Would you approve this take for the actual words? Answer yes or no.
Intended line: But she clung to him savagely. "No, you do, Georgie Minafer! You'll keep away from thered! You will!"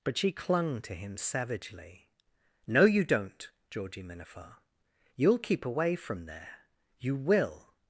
no